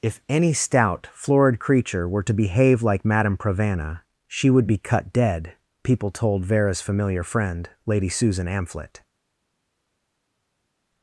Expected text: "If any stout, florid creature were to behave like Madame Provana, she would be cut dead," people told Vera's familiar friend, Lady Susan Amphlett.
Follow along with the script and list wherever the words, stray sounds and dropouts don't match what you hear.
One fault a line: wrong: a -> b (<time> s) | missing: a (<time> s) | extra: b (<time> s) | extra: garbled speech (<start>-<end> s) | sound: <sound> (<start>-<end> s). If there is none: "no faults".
no faults